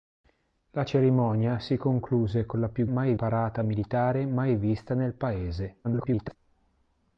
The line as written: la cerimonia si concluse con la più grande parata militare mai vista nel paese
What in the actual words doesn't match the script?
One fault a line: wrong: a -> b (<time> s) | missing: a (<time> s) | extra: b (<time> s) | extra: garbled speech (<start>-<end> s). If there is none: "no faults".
wrong: grande -> mai (2.8 s)
extra: garbled speech (5.8-6.4 s)